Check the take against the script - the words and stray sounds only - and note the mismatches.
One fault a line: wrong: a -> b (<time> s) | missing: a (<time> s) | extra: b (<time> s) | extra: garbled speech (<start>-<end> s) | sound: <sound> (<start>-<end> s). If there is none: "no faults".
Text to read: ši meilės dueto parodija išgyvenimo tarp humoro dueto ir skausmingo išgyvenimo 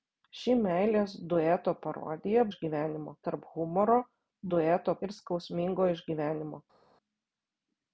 no faults